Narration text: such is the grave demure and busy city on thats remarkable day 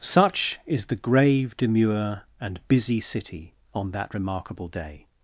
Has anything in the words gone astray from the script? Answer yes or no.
yes